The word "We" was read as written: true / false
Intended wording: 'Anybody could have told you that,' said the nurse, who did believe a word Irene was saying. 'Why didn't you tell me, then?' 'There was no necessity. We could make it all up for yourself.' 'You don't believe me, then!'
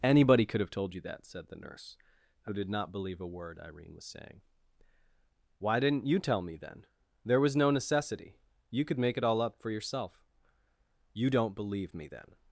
false